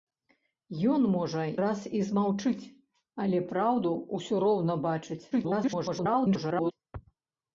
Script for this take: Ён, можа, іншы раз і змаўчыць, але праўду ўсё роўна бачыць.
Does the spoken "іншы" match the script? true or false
false